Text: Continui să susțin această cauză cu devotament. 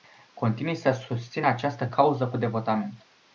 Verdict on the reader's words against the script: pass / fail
pass